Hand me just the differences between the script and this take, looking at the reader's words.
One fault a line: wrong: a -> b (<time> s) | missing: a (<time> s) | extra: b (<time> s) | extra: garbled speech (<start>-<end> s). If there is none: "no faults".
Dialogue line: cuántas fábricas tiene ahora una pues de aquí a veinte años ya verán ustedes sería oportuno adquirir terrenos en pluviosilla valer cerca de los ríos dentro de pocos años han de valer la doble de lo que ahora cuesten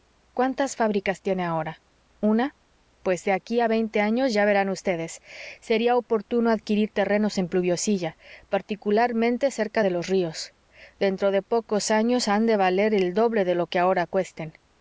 wrong: valer -> particularmente (8.5 s)
wrong: la -> el (12.9 s)